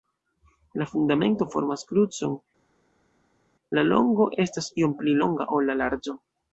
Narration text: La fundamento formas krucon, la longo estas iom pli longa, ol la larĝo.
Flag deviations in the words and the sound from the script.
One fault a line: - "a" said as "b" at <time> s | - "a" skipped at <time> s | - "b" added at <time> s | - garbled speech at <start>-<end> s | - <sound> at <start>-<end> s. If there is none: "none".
none